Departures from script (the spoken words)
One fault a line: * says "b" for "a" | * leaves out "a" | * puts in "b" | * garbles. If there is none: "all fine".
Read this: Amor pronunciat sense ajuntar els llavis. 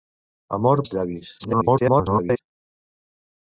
* leaves out "pronunciat sense ajuntar"
* garbles